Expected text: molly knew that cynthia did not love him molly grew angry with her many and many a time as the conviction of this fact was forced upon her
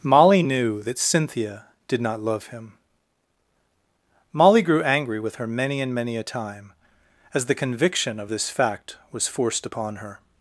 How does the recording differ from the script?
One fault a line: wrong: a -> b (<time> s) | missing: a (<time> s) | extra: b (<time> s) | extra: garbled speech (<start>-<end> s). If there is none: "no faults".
no faults